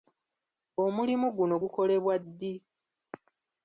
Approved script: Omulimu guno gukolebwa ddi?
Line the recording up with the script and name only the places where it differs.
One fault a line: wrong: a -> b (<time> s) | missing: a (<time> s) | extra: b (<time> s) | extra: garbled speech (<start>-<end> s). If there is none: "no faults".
no faults